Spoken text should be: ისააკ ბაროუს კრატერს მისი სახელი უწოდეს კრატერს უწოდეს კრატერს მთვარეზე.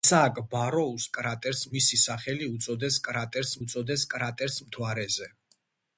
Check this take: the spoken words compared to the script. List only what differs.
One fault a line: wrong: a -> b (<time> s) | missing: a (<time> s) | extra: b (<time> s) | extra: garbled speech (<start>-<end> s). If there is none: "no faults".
no faults